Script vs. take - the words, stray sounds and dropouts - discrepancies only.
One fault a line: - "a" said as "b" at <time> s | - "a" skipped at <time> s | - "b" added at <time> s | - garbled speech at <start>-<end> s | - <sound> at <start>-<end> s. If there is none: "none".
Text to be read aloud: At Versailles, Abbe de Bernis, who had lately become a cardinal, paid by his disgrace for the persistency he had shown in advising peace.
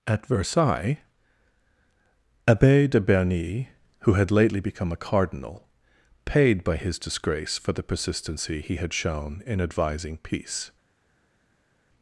none